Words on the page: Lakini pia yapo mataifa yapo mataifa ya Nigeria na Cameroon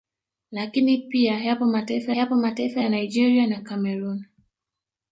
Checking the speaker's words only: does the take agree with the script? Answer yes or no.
yes